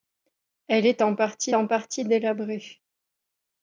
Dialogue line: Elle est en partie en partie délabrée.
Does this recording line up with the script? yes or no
yes